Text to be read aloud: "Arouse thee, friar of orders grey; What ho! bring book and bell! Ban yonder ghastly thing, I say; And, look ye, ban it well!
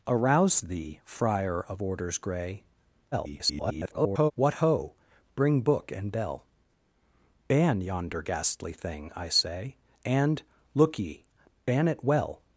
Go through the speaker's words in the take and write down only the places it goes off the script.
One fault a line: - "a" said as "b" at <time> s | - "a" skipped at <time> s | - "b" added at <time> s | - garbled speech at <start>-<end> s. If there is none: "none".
- garbled speech at 3.1-4.3 s